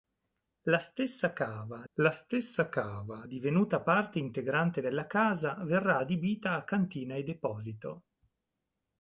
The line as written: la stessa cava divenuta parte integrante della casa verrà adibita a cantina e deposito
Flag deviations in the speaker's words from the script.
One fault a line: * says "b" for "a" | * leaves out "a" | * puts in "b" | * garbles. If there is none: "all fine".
* puts in "la stessa cava"